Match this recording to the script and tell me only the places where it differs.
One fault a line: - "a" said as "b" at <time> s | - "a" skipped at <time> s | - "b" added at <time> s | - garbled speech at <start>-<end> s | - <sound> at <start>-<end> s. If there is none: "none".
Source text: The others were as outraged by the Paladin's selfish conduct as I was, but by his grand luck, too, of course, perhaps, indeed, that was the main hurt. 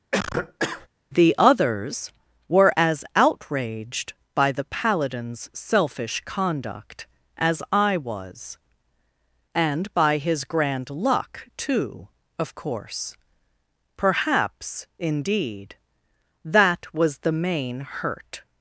- cough at 0.1-0.9 s
- "but" said as "and" at 9.5 s